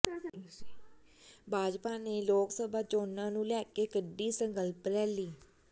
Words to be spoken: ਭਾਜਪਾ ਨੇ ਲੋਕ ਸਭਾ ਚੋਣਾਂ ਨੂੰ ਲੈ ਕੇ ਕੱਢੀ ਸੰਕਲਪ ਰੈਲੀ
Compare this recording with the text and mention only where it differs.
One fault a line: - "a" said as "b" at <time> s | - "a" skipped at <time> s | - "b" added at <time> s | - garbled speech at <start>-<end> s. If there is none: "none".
none